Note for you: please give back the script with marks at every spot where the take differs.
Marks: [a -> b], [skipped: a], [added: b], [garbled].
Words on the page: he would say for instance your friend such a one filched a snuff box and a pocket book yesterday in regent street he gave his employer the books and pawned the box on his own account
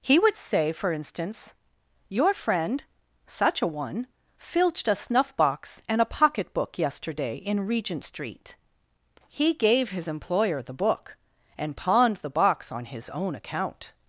he would say for instance your friend such a one filched a snuff box and a pocket book yesterday in regent street he gave his employer the [books -> book] and pawned the box on his own account